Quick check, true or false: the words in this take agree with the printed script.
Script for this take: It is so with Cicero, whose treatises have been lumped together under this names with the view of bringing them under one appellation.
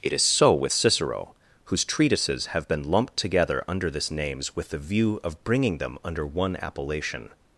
true